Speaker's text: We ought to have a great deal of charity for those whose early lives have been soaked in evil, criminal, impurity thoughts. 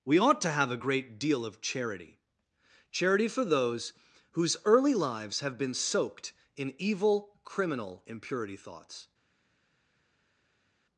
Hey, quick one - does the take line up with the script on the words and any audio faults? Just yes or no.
no